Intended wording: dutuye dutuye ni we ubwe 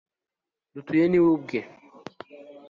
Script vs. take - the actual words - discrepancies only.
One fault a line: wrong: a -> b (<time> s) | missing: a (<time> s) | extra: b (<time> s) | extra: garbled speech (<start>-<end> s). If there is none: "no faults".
missing: dutuye (1.1 s)